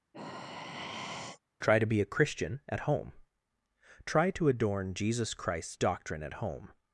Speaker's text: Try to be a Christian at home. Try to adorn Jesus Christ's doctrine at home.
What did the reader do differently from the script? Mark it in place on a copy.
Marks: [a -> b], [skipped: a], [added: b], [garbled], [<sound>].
[sigh] Try to be a Christian at home. Try to adorn Jesus Christ's doctrine at home.